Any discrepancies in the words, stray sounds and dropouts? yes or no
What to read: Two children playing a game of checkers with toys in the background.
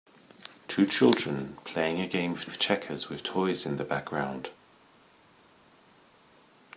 yes